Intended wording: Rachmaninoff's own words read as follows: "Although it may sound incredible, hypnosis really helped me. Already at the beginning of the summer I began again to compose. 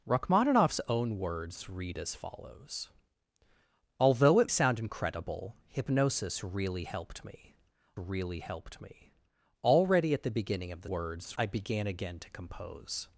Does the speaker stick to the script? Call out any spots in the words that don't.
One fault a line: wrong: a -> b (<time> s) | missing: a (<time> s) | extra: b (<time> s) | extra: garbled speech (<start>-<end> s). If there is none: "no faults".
missing: may (4.5 s)
extra: really helped me (8.0 s)
wrong: summer -> words (10.9 s)